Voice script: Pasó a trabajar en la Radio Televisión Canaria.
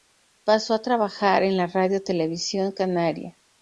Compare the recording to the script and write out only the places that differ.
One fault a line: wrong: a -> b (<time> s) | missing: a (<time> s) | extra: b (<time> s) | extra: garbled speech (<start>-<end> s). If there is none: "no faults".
no faults